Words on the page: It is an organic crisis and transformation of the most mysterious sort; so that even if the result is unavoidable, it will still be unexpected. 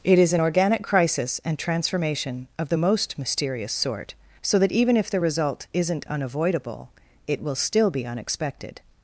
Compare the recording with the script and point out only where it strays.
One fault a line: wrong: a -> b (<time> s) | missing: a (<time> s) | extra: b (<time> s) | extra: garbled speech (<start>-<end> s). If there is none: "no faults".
wrong: is -> isn't (5.7 s)